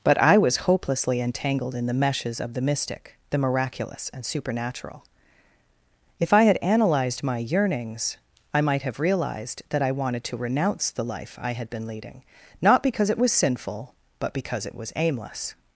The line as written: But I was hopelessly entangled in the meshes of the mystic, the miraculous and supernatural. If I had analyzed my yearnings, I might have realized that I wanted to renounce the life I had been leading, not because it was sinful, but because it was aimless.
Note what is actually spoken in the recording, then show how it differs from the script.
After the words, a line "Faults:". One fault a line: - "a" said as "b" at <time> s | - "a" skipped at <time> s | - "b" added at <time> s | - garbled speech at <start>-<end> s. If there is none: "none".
But I was hopelessly entangled in the meshes of the mystic, the miraculous and supernatural. If I had analyzed my yearnings, I might have realized that I wanted to renounce the life I had been leading, not because it was sinful, but because it was aimless.
Faults:
none